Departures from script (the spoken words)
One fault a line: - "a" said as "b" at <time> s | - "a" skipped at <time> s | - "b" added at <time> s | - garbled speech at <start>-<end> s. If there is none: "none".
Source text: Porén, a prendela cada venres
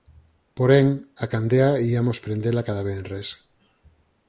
- "candea iamos" added at 1.3 s